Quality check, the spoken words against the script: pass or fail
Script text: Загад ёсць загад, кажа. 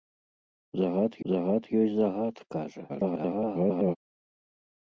fail